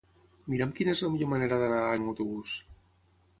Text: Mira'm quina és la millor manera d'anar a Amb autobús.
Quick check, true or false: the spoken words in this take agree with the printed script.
true